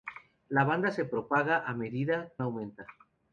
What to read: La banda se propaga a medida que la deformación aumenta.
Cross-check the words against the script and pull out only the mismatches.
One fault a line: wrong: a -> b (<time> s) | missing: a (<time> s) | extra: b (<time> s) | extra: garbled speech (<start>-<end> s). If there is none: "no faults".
missing: que la deformación (2.3 s)